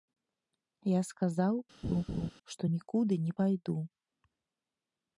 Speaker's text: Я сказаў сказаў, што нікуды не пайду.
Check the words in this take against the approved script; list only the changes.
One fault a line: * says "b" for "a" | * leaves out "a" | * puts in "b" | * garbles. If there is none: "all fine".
* leaves out "сказаў"